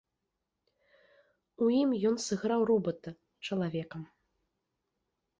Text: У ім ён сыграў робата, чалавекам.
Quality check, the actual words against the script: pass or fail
pass